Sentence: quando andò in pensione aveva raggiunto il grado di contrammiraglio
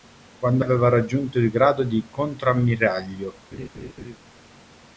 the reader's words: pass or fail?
fail